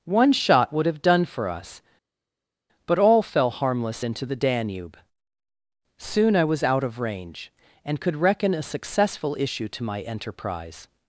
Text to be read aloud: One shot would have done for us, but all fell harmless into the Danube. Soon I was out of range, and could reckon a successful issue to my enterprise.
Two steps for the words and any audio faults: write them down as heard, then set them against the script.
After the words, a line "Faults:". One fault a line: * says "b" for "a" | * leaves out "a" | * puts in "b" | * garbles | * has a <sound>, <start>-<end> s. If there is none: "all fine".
One shot would have done for us, but all fell harmless into the Danube. Soon I was out of range, and could reckon a successful issue to my enterprise.
Faults:
all fine